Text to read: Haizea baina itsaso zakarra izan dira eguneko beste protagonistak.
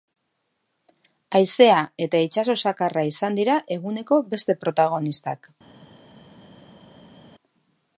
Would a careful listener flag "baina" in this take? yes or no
yes